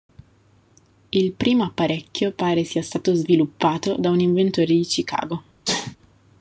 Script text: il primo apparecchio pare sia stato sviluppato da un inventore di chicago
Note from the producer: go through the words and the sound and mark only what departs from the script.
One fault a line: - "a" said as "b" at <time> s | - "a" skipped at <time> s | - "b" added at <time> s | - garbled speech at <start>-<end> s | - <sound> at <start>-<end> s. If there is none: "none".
- sneeze at 5.6-6.0 s